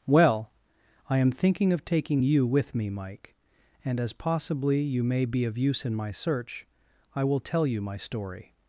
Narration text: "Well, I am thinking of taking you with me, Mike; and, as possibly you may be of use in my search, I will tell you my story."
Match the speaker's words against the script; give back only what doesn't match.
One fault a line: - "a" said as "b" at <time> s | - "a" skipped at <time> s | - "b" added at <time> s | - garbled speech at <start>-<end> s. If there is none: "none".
none